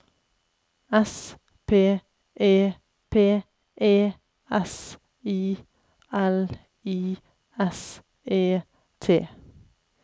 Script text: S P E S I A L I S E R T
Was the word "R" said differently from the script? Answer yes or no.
yes